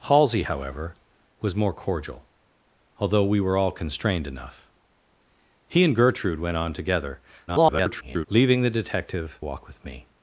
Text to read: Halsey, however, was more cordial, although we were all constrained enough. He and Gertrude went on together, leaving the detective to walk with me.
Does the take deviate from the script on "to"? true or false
true